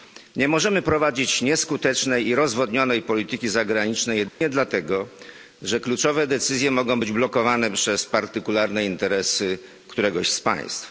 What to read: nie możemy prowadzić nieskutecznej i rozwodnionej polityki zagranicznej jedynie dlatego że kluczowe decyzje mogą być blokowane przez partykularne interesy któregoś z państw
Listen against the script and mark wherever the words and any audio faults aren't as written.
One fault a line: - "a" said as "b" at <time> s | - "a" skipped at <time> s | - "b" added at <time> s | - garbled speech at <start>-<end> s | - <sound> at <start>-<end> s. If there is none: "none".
- dropout at 4.3-4.4 s